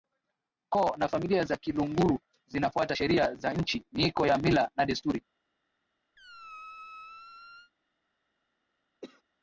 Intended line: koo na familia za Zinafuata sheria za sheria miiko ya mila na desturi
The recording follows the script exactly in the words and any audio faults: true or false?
false